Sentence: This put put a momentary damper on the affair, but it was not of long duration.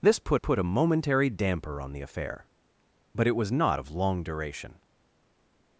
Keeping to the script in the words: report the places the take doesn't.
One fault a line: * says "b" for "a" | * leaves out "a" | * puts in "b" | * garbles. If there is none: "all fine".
all fine